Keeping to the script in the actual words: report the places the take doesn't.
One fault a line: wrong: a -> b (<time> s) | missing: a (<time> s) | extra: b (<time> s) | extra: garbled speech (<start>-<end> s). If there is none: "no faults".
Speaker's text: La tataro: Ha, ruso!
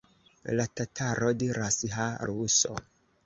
extra: diras (1.4 s)